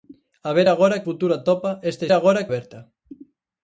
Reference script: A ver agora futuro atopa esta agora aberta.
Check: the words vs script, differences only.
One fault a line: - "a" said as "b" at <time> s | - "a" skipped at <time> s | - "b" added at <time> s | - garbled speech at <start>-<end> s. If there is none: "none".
none